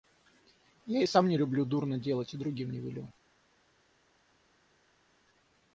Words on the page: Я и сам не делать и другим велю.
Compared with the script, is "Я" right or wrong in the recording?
right